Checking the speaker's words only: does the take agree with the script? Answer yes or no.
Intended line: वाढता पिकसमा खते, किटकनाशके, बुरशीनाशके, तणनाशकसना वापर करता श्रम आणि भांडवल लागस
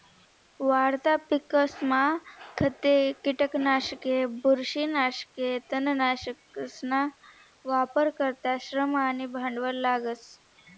yes